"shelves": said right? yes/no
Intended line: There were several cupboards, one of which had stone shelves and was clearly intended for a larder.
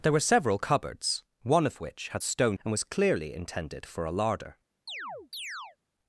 no